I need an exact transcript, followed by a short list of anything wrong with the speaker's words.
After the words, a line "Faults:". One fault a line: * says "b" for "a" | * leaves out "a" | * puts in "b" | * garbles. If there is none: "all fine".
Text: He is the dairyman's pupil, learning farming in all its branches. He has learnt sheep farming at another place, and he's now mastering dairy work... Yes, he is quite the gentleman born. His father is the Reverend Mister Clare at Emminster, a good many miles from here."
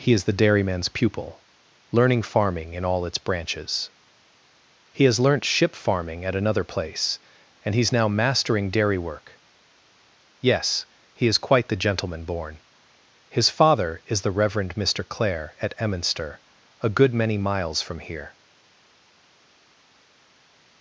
He is the dairyman's pupil, learning farming in all its branches. He has learnt ship farming at another place, and he's now mastering dairy work... Yes, he is quite the gentleman born. His father is the Reverend Mister Clare at Emminster, a good many miles from here."
Faults:
* says "ship" for "sheep"